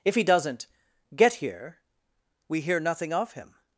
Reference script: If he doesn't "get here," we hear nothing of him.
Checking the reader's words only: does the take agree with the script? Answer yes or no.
yes